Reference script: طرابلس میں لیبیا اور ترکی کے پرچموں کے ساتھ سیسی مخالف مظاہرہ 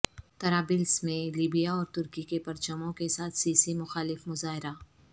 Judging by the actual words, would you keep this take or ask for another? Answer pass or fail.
pass